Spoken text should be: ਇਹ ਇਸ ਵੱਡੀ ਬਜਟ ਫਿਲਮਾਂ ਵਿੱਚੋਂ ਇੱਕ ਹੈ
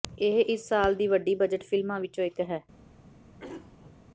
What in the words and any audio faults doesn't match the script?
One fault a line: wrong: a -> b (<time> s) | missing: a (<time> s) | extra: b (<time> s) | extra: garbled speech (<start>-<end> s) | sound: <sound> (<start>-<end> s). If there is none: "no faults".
extra: ਸਾਲ ਦੀ (0.7 s)
sound: throat clearing (3.4-3.9 s)